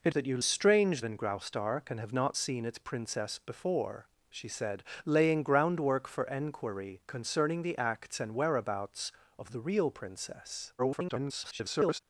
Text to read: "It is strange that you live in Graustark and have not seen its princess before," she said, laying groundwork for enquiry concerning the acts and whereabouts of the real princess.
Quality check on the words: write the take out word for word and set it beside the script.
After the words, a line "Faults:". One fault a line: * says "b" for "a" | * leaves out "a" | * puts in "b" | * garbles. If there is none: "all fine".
"It that you strange in Graustark and have not seen its princess before," she said, laying groundwork for enquiry concerning the acts and whereabouts of the real princess. [garbled]
Faults:
* leaves out "is strange"
* says "strange" for "live"
* garbles